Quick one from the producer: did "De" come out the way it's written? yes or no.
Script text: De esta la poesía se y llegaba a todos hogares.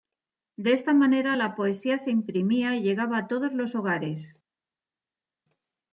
yes